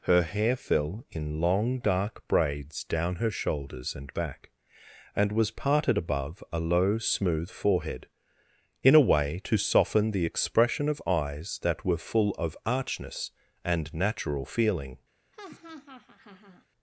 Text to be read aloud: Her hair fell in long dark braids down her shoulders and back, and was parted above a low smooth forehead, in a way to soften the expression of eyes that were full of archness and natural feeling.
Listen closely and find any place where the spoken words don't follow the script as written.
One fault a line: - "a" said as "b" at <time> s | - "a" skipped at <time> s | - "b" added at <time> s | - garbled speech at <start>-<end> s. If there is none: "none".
none